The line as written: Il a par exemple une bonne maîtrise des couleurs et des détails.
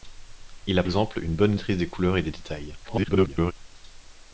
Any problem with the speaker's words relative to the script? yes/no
yes